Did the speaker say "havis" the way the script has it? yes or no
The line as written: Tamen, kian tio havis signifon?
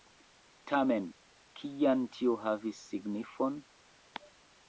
yes